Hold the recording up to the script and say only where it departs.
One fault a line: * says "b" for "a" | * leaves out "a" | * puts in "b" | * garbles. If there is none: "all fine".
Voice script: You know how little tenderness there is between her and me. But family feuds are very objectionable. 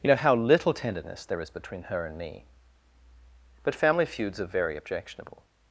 all fine